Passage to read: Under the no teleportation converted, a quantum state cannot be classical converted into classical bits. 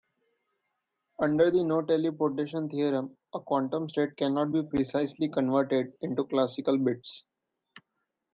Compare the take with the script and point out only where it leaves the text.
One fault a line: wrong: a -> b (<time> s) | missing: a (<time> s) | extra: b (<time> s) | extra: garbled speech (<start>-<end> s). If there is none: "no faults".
wrong: converted -> theorem (2.7 s)
wrong: classical -> precisely (4.6 s)